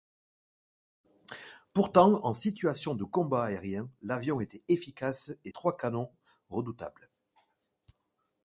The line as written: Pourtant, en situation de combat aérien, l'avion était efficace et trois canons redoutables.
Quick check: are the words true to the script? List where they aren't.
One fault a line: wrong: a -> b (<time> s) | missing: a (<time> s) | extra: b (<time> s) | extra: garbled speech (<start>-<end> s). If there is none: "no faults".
no faults